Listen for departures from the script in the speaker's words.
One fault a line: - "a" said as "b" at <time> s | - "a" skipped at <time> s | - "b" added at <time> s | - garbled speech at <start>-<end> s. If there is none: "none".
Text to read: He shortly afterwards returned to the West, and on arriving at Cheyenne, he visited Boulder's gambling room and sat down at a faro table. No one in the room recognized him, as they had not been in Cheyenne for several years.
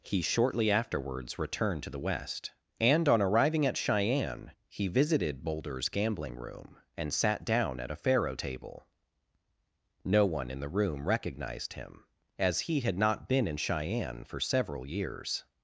- "they" said as "he" at 12.6 s